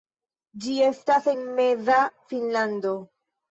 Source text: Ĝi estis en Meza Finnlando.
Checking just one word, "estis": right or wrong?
wrong